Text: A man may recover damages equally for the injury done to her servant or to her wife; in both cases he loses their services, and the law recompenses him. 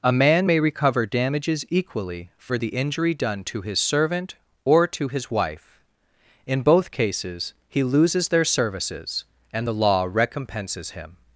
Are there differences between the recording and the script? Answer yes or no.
yes